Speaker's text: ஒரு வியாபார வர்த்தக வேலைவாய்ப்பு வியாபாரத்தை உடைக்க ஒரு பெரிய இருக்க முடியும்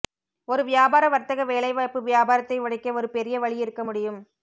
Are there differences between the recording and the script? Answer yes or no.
yes